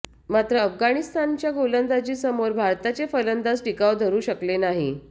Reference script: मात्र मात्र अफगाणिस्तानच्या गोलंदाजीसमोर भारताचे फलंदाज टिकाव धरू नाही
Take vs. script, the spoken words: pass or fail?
fail